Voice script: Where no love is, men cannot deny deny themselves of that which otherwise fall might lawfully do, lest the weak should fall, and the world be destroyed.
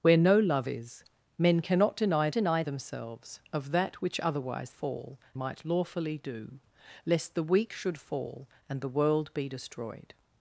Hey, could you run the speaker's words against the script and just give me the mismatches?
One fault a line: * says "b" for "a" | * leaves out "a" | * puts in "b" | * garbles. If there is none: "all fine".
all fine